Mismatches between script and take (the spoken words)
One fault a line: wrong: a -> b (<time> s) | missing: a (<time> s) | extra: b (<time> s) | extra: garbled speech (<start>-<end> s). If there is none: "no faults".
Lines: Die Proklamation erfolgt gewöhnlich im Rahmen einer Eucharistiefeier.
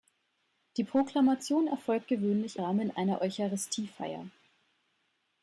missing: im (2.6 s)